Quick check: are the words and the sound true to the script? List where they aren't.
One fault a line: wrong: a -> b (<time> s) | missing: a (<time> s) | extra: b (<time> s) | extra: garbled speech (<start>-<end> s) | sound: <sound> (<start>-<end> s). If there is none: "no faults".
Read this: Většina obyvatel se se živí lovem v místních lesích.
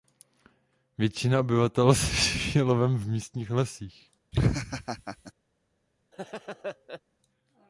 missing: se (2.1 s)
sound: laugh (4.3-5.3 s)
sound: laugh (6.1-7.0 s)